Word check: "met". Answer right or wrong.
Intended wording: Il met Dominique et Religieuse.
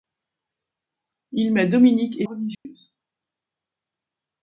right